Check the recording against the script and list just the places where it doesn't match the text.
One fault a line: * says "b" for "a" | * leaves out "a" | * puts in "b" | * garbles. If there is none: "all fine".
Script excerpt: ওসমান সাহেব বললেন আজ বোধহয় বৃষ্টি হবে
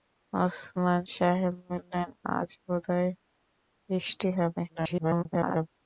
* garbles